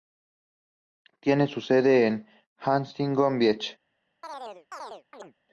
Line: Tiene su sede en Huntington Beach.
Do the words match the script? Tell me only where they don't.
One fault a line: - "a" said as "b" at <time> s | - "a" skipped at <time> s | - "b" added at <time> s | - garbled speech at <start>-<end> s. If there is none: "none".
none